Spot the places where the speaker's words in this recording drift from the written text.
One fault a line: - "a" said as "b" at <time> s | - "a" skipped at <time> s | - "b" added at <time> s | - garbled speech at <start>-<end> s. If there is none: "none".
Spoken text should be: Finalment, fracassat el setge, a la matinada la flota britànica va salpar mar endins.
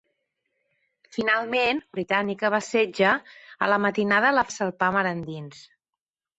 - "fracassat" said as "britànica" at 2.0 s
- "flota britànica" skipped at 4.5 s